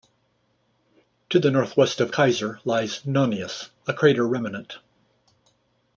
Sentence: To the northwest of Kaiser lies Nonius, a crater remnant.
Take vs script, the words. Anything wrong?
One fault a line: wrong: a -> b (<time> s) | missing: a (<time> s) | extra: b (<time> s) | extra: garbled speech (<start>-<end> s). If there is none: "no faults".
no faults